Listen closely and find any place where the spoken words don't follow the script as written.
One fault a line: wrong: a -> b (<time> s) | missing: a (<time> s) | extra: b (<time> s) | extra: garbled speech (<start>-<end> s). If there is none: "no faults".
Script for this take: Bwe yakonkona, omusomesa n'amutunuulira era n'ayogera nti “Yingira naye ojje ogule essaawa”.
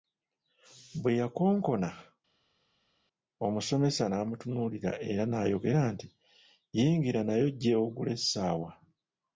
no faults